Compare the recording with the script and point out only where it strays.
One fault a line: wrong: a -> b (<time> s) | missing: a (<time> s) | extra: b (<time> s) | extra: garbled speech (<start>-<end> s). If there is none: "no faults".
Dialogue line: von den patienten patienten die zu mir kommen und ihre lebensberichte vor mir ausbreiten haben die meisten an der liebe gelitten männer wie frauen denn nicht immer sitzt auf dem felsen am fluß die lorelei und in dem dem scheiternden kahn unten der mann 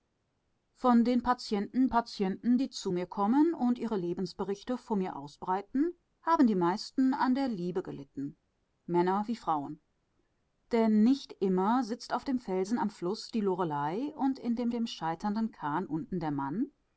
no faults